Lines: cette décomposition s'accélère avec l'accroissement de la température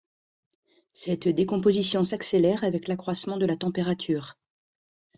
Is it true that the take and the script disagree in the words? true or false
false